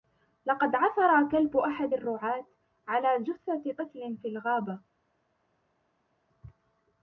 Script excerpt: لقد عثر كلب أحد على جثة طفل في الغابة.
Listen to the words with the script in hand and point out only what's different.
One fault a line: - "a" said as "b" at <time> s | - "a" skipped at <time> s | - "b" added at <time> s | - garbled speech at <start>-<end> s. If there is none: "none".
- "الرعاة" added at 1.9 s